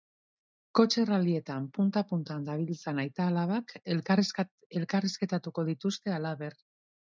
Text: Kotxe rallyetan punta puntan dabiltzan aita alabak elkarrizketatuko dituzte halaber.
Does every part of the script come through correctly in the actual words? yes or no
yes